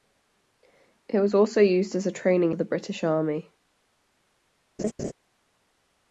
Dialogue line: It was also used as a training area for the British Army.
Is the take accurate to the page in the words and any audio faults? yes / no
no